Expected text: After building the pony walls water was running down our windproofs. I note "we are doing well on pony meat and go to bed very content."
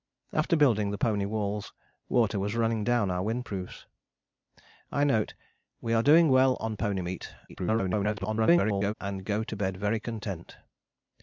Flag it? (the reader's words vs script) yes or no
yes